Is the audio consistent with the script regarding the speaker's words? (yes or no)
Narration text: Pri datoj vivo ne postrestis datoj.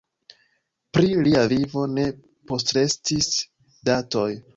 no